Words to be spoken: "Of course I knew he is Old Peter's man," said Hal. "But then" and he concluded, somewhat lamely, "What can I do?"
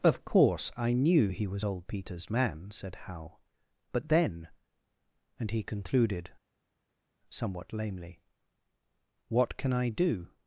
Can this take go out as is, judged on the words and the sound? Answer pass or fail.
fail